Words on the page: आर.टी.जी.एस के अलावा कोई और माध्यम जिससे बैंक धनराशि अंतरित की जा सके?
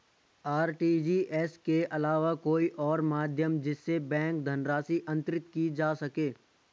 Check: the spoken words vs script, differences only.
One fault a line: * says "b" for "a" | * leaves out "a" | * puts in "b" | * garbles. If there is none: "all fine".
all fine